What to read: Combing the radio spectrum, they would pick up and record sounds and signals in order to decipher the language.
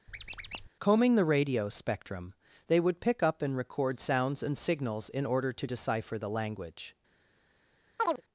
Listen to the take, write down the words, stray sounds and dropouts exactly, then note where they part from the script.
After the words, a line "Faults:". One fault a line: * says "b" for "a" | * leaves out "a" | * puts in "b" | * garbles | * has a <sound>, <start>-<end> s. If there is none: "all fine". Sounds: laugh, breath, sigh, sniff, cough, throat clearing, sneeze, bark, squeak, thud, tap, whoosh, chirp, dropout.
Combing the radio spectrum, they would pick up and record sounds and signals in order to decipher the language.
Faults:
* has a squeak, 0.1-0.7 s
* has a chirp, 8.0-8.2 s